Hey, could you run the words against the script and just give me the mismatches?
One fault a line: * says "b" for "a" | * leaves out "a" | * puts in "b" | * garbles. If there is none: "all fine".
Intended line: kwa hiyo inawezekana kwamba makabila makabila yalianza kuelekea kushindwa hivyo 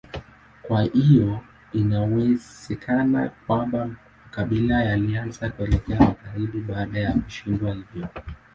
* leaves out "makabila"
* puts in "magharibi baada ya"